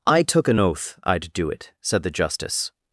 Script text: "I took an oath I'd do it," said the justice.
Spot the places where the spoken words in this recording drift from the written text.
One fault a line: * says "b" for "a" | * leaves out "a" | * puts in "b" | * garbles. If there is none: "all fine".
all fine